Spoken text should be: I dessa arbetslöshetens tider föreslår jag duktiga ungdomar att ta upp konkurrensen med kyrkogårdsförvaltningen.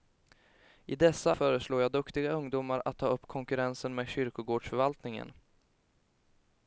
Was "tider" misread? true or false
true